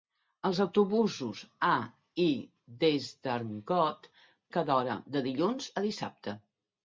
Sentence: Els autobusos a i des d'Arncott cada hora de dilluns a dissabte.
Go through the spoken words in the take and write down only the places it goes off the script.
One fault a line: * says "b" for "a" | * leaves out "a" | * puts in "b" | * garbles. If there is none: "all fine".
all fine